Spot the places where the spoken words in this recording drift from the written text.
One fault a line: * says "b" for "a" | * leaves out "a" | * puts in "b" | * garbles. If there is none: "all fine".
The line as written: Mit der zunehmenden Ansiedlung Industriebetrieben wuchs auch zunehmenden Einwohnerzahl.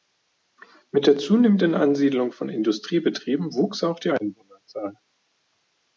* puts in "von"
* says "die" for "zunehmenden"